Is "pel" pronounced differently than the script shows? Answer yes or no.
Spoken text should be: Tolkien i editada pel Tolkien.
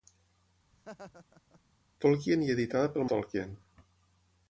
no